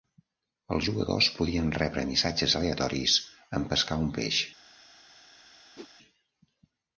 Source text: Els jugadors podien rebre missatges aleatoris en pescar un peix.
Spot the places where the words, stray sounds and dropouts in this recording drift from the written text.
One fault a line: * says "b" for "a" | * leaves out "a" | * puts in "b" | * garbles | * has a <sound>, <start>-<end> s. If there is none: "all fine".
* has a whoosh, 5.8-5.9 s